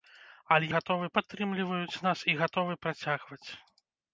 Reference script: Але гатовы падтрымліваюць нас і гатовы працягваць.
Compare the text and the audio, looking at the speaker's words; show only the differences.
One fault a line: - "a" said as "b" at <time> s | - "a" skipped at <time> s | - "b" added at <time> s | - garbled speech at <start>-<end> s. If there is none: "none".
none